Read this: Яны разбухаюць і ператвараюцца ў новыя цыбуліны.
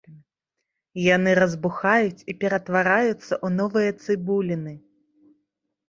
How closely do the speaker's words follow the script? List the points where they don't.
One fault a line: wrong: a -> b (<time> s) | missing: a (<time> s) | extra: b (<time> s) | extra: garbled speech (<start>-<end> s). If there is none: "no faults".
no faults